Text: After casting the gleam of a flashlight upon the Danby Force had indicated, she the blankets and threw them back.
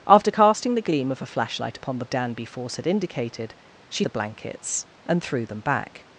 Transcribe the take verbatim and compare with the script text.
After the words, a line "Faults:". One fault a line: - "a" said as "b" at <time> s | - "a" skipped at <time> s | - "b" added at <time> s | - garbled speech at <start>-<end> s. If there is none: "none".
After casting the gleam of a flashlight upon the Danby Force had indicated, she the blankets and threw them back.
Faults:
none